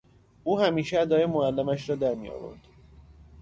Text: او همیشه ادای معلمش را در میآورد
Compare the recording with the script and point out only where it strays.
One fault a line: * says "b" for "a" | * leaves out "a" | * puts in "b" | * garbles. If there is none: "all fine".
all fine